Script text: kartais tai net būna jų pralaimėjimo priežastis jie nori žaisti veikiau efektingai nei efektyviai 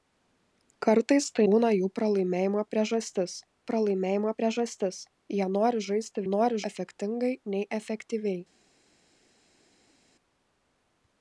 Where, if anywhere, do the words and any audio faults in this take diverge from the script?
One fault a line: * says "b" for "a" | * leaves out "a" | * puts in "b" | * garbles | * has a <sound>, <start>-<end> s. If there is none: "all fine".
* leaves out "net"
* puts in "pralaimėjimo priežastis"
* says "nori" for "veikiau"